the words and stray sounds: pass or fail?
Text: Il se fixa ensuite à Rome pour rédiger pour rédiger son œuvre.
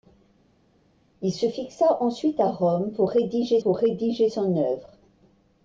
pass